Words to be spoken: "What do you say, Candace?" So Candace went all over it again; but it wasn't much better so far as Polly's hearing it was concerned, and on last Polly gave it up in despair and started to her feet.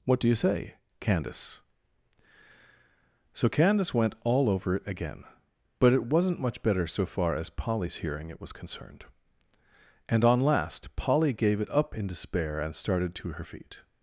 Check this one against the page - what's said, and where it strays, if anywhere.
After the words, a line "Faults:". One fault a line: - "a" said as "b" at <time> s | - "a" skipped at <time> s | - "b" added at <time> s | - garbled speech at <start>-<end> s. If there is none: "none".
"What do you say, Candace?" So Candace went all over it again; but it wasn't much better so far as Polly's hearing it was concerned, and on last Polly gave it up in despair and started to her feet.
Faults:
none